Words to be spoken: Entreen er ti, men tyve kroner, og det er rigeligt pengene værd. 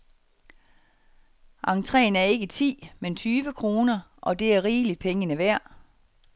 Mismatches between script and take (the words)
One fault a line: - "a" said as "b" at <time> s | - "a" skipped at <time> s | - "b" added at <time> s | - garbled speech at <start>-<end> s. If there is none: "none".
- "ikke" added at 2.2 s